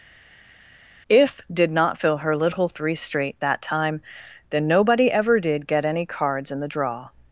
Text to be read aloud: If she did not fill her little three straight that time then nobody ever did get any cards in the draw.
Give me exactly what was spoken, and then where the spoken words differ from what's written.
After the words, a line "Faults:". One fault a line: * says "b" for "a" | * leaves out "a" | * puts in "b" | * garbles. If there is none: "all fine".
If did not fill her little three straight that time then nobody ever did get any cards in the draw.
Faults:
* leaves out "she"